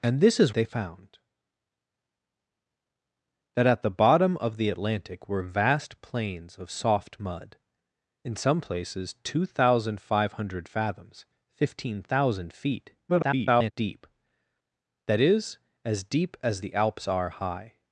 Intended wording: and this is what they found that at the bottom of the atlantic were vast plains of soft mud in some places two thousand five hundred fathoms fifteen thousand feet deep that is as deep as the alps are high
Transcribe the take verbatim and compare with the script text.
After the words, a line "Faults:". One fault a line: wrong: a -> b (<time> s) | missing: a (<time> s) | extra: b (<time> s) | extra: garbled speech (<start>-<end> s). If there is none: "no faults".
and this is they found that at the bottom of the atlantic were vast plains of soft mud in some places two thousand five hundred fathoms fifteen thousand feet [garbled] deep that is as deep as the alps are high
Faults:
missing: what (0.5 s)
extra: garbled speech (13.1-13.7 s)